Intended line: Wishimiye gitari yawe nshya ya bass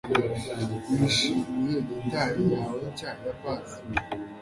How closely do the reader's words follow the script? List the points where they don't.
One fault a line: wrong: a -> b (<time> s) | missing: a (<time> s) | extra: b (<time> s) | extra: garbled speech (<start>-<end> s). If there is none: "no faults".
no faults